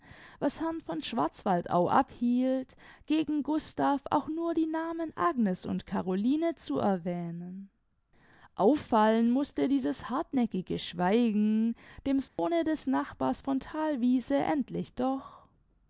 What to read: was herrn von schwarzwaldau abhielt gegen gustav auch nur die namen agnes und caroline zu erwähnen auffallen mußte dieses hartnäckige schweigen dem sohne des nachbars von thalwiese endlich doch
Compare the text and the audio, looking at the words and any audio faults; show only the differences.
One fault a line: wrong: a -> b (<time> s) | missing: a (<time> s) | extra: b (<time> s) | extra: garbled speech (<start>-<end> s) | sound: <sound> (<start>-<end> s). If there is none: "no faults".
sound: dropout (12.3-12.4 s)